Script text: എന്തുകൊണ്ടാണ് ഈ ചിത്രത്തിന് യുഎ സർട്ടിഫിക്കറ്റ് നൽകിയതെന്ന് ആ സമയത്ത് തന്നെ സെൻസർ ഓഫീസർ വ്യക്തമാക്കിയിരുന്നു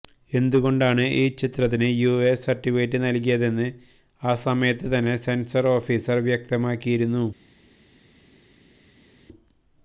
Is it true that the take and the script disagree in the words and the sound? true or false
false